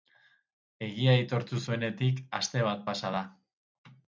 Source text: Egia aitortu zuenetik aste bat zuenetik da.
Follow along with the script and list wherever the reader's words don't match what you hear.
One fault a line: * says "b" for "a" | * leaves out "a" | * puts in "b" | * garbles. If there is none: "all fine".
* says "pasa" for "zuenetik"